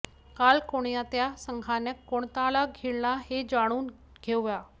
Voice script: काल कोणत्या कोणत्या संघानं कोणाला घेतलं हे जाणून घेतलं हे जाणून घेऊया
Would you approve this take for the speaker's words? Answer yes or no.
no